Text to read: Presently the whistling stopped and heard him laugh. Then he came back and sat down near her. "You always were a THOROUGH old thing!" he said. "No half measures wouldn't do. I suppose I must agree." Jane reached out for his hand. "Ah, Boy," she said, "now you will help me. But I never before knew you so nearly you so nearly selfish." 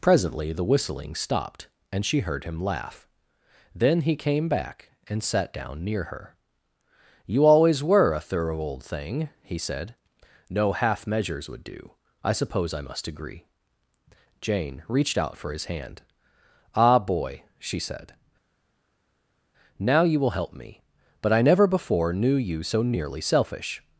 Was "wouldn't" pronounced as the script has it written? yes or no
no